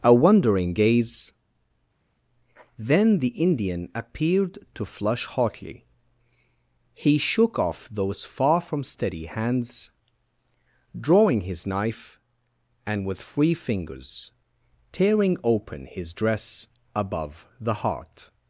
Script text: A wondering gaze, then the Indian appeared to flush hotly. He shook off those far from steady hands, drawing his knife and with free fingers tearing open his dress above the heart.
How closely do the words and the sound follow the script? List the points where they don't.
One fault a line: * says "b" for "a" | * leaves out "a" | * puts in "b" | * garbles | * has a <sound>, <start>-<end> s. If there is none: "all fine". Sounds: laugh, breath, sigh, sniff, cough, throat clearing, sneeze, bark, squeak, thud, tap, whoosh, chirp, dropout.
all fine